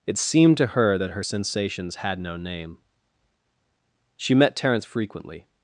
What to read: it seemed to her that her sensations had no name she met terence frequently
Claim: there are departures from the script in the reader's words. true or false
false